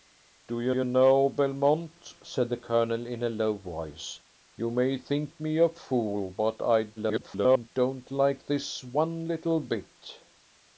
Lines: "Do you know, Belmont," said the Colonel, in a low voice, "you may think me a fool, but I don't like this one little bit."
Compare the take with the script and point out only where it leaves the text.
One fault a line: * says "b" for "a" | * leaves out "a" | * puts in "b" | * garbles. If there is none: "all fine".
* puts in "you"
* garbles